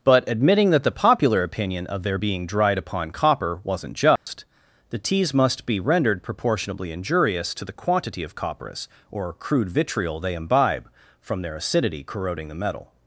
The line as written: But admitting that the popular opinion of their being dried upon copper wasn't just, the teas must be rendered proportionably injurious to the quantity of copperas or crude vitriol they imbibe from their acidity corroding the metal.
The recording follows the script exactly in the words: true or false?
true